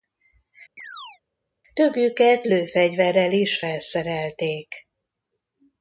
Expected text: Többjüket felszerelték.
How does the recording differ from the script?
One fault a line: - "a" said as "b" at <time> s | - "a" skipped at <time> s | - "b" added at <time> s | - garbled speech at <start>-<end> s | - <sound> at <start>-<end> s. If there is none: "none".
- chirp at 0.8-1.2 s
- "lőfegyverrel is" added at 2.4 s